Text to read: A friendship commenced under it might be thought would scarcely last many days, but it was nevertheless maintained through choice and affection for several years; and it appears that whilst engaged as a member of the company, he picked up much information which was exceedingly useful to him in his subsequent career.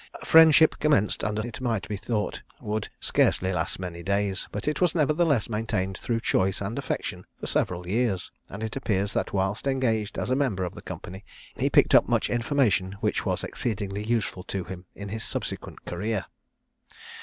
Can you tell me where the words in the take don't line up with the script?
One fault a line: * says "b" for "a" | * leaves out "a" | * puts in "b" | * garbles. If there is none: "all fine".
all fine